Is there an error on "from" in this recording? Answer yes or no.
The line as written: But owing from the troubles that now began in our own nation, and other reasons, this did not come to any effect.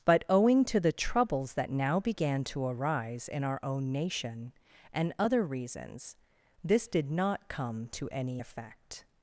yes